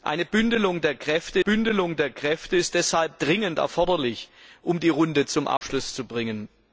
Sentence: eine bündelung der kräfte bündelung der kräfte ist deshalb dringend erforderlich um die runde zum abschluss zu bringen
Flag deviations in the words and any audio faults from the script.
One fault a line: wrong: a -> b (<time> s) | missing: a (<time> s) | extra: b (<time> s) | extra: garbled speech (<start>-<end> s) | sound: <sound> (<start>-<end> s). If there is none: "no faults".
sound: dropout (5.6-5.6 s)